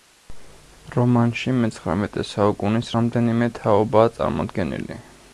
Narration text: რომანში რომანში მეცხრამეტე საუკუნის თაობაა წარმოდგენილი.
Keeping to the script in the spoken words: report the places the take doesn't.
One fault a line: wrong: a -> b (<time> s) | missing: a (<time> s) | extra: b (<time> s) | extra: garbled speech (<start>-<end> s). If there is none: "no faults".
missing: რომანში (1.5 s)
extra: რამდენიმე (2.9 s)